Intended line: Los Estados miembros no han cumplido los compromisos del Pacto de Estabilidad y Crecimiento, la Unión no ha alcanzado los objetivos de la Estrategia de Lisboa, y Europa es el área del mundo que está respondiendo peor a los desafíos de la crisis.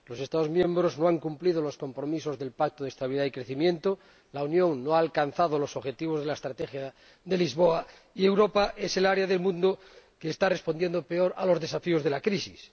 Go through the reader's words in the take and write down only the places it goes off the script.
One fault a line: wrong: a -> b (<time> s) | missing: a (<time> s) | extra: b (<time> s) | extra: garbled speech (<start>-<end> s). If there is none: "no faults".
no faults